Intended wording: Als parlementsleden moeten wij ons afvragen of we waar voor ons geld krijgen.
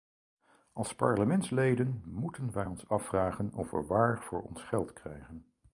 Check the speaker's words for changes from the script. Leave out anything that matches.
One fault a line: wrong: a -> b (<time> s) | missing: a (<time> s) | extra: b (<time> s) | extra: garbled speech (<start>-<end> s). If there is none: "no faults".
no faults